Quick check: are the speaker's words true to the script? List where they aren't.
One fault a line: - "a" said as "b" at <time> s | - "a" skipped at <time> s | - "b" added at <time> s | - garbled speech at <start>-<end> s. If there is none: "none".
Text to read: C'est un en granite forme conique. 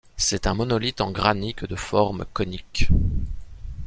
- "monolithe" added at 0.5 s
- "de" added at 1.7 s